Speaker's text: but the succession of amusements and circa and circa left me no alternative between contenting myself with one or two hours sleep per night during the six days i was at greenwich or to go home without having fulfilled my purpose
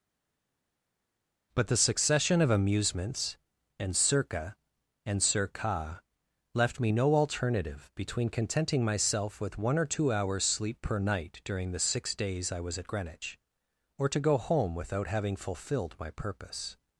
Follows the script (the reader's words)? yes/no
yes